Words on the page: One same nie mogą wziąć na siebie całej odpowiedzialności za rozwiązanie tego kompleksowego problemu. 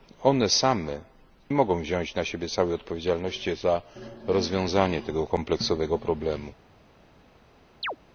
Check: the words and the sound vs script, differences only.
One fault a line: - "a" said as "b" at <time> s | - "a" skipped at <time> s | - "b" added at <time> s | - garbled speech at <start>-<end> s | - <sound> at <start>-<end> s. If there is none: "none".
- "nie" skipped at 1.0 s
- chirp at 7.8-8.0 s